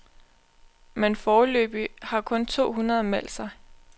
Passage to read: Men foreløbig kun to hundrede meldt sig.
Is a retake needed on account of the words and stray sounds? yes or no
yes